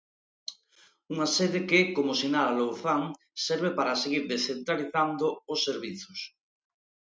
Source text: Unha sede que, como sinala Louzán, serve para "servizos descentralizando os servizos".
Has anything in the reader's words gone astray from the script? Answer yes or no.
yes